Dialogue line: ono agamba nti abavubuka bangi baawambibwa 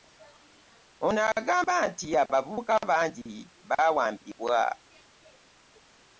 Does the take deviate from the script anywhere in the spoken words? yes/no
no